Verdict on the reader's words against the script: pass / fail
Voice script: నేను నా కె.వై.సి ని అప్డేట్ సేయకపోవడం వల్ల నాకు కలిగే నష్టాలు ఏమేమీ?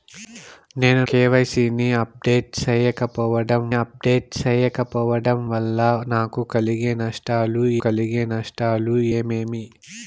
fail